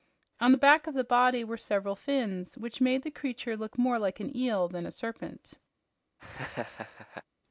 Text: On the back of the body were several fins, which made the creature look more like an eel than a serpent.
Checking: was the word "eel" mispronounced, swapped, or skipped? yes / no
no